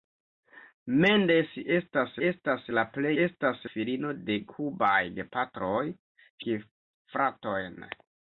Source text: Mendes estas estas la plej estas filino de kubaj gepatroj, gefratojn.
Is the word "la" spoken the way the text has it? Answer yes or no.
yes